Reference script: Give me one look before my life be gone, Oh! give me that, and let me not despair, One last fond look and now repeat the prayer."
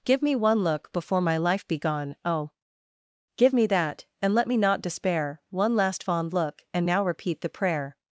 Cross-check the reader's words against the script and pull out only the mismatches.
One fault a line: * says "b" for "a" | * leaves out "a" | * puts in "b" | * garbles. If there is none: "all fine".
all fine